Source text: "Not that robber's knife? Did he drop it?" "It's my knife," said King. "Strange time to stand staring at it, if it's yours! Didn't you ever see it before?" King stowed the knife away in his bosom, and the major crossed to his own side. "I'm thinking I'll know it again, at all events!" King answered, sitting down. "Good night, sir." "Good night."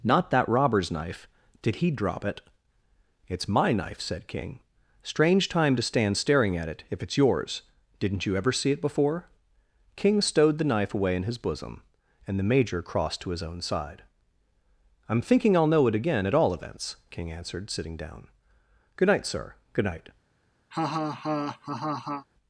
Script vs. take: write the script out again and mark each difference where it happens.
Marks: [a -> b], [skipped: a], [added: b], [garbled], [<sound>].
"Not that robber's knife? Did he drop it?" "It's my knife," said King. "Strange time to stand staring at it, if it's yours! Didn't you ever see it before?" King stowed the knife away in his bosom, and the major crossed to his own side. "I'm thinking I'll know it again, at all events!" King answered, sitting down. "Good night, sir." "Good night." [laugh]